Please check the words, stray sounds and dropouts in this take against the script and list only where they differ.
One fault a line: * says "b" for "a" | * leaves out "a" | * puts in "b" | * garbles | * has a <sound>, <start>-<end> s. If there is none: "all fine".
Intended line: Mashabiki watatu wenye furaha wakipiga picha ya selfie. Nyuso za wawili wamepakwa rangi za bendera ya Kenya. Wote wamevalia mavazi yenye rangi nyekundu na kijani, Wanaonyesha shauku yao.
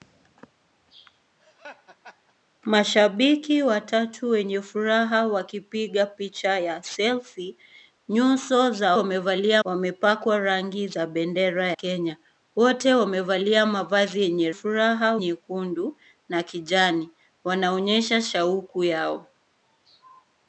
* has a laugh, 1.4-2.4 s
* says "wamevalia" for "wawili"
* leaves out "ya"
* says "furaha" for "rangi"